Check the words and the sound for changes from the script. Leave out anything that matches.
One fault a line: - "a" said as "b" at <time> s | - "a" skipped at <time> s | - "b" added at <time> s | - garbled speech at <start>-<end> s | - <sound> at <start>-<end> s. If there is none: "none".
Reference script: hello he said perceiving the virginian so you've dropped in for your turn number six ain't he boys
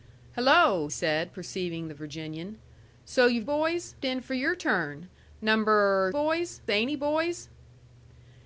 - "he" skipped at 0.9 s
- "dropped" said as "boys" at 3.4 s
- "six" said as "boys" at 6.1 s